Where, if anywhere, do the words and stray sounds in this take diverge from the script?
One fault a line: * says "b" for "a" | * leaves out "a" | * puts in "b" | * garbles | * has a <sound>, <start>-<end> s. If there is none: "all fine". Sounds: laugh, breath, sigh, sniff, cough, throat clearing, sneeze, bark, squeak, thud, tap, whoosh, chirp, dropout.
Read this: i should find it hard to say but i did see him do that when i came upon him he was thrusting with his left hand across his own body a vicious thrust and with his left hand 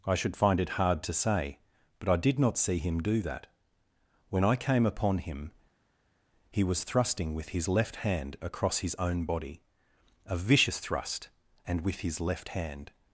* puts in "not"